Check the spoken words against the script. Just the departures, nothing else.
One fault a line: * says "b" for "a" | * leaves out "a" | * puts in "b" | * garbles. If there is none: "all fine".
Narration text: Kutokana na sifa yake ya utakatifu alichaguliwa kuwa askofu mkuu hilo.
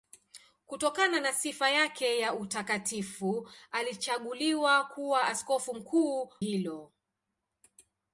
all fine